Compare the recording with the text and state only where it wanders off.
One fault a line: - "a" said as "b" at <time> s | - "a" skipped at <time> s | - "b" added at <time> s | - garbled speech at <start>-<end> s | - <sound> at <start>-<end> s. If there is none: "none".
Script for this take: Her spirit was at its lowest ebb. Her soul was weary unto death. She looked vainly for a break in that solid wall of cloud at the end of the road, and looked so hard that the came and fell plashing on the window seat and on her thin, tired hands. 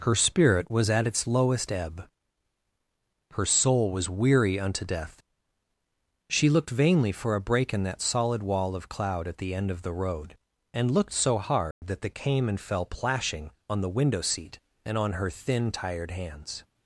- dropout at 11.7-11.8 s